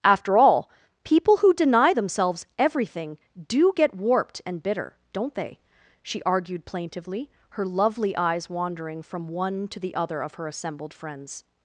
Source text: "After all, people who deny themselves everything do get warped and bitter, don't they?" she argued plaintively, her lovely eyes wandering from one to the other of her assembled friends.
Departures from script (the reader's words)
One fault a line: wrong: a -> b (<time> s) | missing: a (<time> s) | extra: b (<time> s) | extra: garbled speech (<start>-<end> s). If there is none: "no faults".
no faults